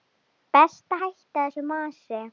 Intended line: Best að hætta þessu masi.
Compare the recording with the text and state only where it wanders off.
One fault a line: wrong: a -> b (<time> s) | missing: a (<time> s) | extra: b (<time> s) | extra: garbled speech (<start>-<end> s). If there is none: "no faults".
no faults